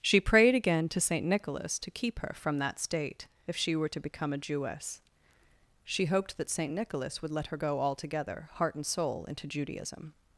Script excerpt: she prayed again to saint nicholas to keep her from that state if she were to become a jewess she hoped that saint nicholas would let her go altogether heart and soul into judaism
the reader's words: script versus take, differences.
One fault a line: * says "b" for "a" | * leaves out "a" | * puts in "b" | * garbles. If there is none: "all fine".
all fine